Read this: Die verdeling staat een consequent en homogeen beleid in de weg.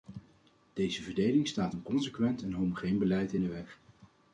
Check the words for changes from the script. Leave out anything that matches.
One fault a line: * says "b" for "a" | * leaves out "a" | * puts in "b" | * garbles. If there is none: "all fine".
* says "Deze" for "Die"